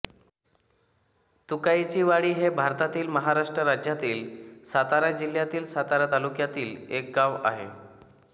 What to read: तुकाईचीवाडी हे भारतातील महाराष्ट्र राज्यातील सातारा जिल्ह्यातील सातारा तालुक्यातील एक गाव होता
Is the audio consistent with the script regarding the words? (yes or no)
no